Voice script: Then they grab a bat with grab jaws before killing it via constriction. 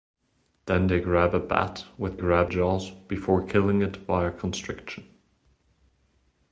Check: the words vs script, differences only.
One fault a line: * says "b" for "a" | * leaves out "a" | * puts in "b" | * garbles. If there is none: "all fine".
all fine